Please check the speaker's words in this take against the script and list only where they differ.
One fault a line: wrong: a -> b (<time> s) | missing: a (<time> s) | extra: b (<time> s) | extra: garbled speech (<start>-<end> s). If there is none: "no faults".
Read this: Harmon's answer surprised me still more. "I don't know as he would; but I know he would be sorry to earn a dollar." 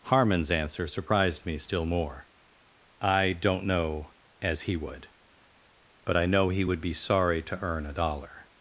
no faults